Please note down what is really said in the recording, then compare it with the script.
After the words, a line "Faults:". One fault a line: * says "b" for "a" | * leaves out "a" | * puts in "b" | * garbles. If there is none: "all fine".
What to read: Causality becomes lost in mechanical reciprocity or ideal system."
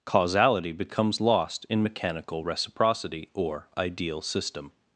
Causality becomes lost in mechanical reciprocity or ideal system."
Faults:
all fine